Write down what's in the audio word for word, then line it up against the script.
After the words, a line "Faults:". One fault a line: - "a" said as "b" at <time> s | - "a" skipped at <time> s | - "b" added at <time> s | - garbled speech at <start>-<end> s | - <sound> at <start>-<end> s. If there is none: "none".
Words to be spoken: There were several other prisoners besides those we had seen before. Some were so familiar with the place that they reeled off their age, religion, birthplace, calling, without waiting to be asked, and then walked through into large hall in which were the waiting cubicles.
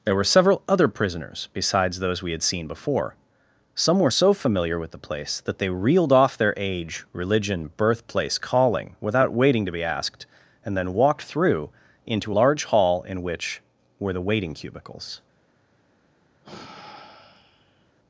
There were several other prisoners besides those we had seen before. Some were so familiar with the place that they reeled off their age, religion, birthplace, calling, without waiting to be asked, and then walked through into large hall in which were the waiting cubicles.
Faults:
- sigh at 16.4-17.9 s